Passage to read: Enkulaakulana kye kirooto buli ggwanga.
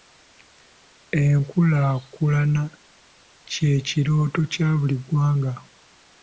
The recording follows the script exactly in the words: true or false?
false